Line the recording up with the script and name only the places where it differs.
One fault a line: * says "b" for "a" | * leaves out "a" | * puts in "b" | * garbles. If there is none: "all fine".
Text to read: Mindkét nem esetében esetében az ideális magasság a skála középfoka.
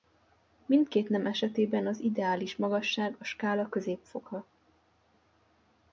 * leaves out "esetében"